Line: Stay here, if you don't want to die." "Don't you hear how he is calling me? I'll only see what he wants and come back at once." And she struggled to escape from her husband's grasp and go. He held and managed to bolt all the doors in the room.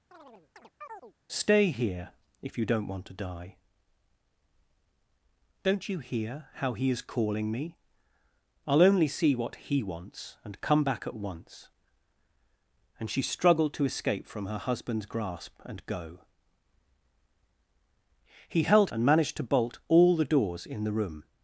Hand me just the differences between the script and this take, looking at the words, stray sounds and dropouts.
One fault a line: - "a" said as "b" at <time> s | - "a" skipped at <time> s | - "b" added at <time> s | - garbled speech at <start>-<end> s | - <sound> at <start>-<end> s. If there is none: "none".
- chirp at 0.1-1.1 s